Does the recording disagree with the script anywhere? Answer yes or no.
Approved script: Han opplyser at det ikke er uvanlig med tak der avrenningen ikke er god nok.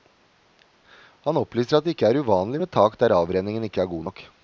no